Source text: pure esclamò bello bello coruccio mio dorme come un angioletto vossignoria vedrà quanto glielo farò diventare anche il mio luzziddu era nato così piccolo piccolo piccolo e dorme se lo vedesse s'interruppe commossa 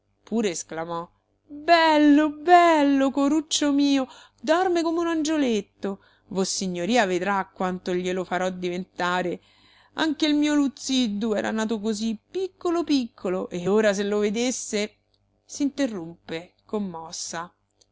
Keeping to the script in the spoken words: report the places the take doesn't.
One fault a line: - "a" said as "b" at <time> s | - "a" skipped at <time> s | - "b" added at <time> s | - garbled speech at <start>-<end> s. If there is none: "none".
- "piccolo" skipped at 13.5 s
- "dorme" said as "ora" at 13.7 s